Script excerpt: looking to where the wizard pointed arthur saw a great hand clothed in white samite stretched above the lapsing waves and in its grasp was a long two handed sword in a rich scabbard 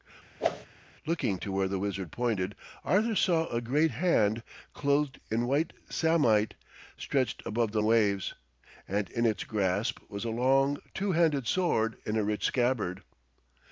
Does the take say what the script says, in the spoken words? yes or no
no